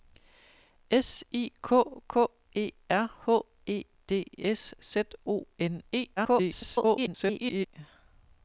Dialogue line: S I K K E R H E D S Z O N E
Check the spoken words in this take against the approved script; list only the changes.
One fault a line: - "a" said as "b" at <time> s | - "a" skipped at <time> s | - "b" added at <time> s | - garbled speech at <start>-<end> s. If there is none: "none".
- garbled speech at 6.2-7.7 s